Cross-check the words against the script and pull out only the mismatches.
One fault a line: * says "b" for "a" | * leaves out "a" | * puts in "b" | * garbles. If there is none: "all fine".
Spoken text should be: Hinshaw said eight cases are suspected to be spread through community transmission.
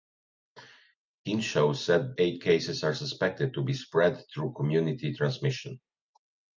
all fine